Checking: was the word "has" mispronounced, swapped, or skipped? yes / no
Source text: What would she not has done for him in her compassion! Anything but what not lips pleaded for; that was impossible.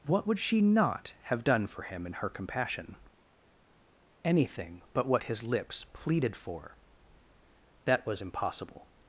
yes